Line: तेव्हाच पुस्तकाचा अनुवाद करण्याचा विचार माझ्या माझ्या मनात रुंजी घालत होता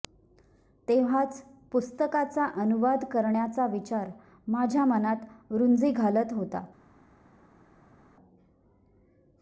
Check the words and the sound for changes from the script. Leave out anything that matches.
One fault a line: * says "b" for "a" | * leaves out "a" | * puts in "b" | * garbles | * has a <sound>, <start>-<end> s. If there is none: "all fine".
* leaves out "माझ्या"